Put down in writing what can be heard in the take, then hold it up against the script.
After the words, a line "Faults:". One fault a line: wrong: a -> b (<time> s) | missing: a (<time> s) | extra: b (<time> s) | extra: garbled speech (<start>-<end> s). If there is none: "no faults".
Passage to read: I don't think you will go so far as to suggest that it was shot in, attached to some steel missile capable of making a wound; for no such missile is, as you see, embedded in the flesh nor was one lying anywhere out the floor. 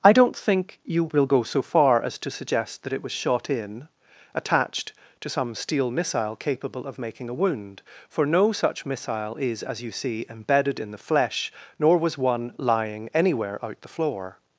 I don't think you will go so far as to suggest that it was shot in, attached to some steel missile capable of making a wound; for no such missile is, as you see, embedded in the flesh nor was one lying anywhere out the floor.
Faults:
no faults